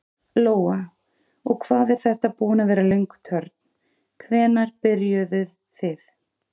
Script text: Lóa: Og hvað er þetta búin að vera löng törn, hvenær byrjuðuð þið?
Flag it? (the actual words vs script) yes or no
no